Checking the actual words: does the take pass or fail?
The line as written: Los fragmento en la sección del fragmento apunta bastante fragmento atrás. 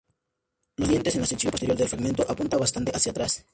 fail